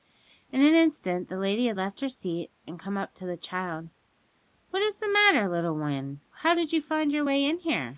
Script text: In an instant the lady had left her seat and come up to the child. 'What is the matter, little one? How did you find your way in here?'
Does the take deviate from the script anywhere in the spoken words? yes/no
no